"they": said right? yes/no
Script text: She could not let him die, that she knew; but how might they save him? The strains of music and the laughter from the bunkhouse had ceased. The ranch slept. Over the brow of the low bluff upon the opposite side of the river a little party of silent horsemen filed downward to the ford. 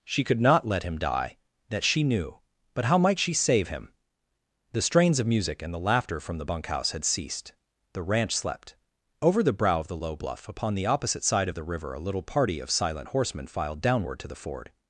no